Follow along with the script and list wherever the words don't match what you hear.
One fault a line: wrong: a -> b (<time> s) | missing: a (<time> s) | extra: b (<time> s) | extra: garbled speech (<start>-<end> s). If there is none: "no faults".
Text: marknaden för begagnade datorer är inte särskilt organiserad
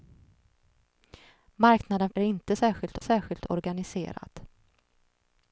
missing: för begagnade datorer (2.1 s)
extra: särskilt (3.0 s)